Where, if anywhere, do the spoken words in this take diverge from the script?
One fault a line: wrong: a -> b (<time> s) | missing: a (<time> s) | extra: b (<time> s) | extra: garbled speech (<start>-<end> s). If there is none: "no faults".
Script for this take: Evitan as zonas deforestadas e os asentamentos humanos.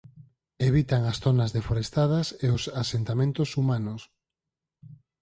no faults